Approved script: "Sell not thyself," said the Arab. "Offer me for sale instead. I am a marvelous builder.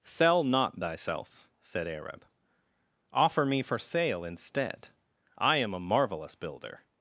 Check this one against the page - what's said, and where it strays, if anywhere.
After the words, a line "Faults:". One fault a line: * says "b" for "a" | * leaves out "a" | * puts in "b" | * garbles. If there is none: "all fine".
"Sell not thyself," said Arab. "Offer me for sale instead. I am a marvelous builder.
Faults:
* leaves out "the"